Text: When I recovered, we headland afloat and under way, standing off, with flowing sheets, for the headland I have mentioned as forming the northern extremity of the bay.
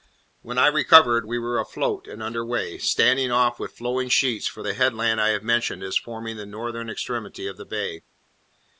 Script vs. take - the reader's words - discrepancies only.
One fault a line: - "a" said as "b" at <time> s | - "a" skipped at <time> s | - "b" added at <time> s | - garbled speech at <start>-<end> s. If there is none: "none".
- "headland" said as "were" at 1.4 s